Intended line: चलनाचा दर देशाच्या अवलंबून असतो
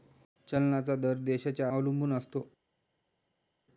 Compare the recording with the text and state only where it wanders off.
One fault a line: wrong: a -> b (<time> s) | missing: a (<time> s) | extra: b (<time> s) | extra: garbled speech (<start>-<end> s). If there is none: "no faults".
no faults